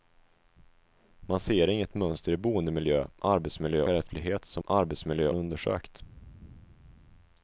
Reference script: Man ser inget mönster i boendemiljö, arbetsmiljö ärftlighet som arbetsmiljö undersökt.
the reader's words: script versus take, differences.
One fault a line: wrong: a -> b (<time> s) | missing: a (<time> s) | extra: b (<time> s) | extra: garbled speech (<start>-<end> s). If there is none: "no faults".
no faults